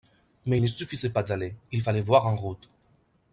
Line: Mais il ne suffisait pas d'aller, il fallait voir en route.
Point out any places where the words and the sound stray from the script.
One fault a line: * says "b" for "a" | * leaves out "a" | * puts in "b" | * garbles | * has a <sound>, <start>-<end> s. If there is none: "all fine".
all fine